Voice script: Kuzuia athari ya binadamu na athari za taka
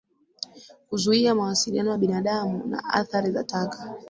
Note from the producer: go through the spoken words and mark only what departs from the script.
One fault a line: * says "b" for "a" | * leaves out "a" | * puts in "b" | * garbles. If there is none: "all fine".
* says "mawasiliano" for "athari"